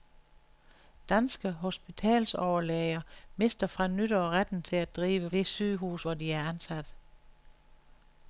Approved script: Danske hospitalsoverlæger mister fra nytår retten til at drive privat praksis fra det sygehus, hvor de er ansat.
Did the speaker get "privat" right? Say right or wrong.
wrong